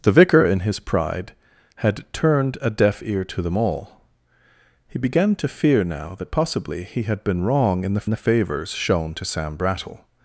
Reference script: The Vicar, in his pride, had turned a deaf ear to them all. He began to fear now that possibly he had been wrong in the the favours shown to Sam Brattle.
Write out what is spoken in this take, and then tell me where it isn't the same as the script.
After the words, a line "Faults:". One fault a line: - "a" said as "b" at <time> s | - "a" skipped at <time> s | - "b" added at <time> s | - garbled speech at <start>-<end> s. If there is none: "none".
The Vicar, in his pride, had turned a deaf ear to them all. He began to fear now that possibly he had been wrong in the the favours shown to Sam Brattle.
Faults:
none